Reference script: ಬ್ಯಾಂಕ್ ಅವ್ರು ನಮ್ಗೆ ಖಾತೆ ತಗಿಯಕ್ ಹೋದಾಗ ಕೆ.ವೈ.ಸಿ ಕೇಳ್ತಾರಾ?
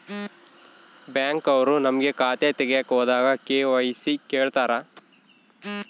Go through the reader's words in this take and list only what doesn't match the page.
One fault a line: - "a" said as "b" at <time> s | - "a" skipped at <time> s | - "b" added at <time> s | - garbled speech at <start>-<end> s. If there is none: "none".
none